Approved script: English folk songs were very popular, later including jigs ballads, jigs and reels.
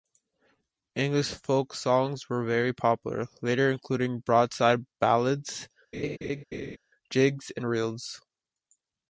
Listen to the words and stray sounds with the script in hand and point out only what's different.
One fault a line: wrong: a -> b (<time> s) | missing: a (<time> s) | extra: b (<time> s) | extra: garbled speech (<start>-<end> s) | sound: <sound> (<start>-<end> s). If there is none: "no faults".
wrong: jigs -> broadside (4.2 s)
sound: laugh (5.9-6.8 s)